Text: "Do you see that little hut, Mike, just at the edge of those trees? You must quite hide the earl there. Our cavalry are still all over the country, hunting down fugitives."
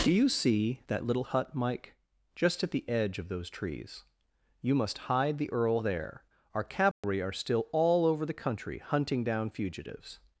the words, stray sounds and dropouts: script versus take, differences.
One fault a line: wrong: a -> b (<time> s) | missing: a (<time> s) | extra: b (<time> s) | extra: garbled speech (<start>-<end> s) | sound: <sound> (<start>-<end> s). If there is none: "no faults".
missing: quite (5.0 s)
sound: dropout (6.9-7.0 s)